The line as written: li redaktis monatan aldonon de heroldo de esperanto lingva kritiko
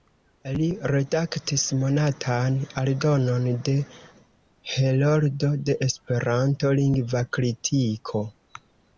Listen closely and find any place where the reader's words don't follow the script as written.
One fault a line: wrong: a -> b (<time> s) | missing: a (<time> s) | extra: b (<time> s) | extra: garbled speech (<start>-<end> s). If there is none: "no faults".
no faults